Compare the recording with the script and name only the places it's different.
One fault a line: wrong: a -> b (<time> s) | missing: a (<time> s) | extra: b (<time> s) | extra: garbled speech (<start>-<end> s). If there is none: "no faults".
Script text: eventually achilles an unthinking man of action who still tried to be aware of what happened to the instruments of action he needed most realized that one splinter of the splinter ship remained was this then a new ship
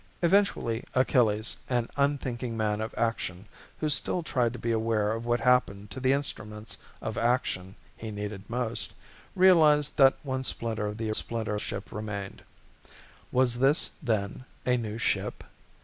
no faults